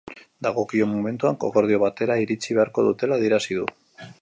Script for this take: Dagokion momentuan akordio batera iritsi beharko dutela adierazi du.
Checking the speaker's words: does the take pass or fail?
pass